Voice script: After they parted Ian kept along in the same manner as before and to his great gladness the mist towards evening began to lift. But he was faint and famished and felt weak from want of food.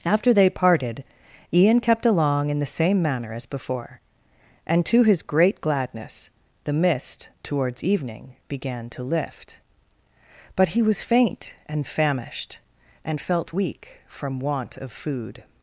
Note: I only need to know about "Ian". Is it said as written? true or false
true